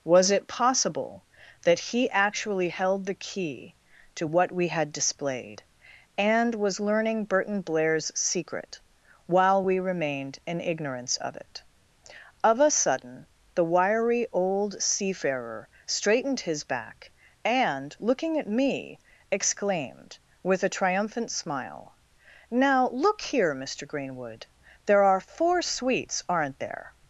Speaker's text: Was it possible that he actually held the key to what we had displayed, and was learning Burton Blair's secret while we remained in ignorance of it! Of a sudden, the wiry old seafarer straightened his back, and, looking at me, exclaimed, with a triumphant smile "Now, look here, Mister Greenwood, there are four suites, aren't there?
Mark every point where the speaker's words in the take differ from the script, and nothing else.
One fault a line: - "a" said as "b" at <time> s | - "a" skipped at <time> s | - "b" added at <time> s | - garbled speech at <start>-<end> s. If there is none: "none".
none